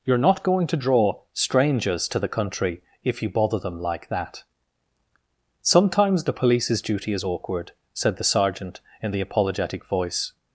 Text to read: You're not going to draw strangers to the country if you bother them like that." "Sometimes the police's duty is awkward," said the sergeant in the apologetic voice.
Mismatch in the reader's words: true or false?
false